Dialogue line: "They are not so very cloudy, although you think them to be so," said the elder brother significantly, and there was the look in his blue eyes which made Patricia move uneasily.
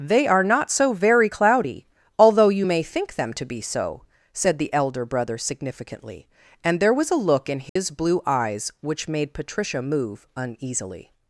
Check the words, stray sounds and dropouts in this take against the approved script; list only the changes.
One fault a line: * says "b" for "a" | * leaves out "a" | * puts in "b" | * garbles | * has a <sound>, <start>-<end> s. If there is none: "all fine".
* puts in "may"
* says "a" for "the"
* has a dropout, 7.7-7.8 s